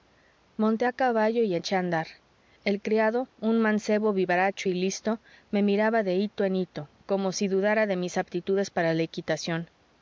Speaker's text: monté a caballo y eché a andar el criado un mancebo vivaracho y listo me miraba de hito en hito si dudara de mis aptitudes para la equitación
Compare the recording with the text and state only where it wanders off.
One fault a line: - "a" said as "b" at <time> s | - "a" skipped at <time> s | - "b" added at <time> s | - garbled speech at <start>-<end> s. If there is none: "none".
- "como" added at 7.1 s